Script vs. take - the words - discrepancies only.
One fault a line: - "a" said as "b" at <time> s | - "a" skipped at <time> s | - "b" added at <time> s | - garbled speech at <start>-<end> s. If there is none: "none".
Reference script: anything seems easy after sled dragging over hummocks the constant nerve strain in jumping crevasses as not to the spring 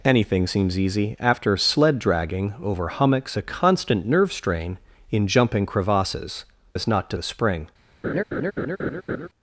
none